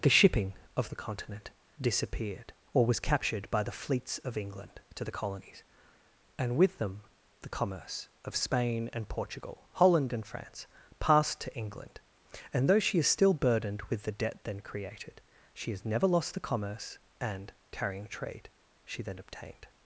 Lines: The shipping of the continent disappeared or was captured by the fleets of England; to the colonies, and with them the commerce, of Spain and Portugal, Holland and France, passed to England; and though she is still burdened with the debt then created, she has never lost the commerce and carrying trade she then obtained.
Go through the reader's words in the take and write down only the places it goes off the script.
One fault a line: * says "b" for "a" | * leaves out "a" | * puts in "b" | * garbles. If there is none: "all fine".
all fine